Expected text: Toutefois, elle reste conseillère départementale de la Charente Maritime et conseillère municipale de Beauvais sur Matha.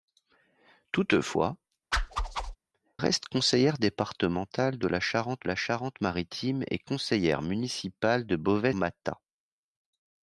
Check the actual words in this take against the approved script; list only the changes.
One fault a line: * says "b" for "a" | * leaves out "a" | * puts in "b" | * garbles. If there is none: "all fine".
* leaves out "elle"
* puts in "la Charente"
* leaves out "sur"